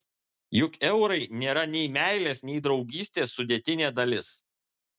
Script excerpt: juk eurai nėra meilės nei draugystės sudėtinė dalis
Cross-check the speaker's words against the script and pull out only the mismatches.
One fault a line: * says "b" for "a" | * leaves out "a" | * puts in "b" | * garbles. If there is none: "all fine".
* puts in "nei"